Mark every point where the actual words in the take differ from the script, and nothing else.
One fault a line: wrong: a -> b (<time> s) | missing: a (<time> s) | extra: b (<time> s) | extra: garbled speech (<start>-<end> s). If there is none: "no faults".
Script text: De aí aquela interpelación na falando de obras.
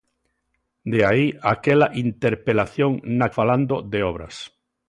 no faults